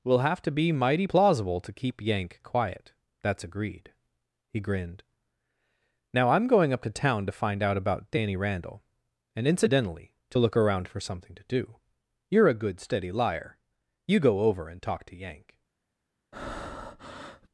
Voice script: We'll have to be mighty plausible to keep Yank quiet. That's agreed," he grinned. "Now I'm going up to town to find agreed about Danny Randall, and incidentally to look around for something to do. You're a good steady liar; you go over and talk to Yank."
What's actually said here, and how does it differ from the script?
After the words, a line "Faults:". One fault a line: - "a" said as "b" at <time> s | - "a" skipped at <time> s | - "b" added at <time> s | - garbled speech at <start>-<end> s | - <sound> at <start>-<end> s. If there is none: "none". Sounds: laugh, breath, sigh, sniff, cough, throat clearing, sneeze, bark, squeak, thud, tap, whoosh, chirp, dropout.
We'll have to be mighty plausible to keep Yank quiet. That's agreed," he grinned. "Now I'm going up to town to find out about Danny Randall, and incidentally to look around for something to do. You're a good steady liar; you go over and talk to Yank."
Faults:
- "agreed" said as "out" at 7.6 s
- breath at 16.3-17.5 s